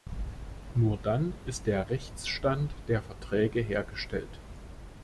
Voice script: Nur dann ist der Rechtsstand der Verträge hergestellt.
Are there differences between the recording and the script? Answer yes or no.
no